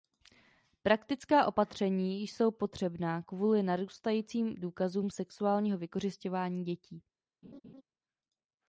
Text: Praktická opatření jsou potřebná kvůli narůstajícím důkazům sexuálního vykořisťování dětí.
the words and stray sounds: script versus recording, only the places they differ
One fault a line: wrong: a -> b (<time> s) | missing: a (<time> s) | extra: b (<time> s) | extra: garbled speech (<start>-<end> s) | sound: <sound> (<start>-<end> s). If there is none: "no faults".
sound: laugh (7.4-7.8 s)